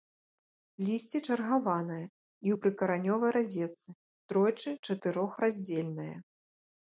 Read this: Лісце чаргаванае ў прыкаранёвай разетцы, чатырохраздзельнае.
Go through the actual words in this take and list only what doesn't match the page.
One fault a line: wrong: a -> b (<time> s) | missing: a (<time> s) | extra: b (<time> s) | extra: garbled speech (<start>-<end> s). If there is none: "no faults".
extra: і (2.0 s)
extra: тройчы (4.3 s)